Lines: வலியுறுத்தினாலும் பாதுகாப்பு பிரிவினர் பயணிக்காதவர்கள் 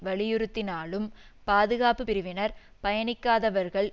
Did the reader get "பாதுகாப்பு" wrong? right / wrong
right